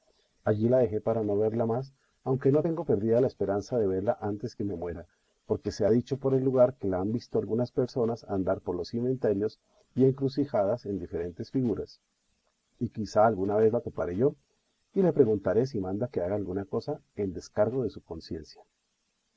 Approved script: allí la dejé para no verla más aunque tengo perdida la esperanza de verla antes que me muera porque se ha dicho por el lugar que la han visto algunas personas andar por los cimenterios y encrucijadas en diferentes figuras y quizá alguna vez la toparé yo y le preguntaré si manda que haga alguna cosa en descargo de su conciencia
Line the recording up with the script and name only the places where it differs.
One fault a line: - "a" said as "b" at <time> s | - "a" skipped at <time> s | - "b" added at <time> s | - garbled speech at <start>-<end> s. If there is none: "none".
- "no" added at 2.5 s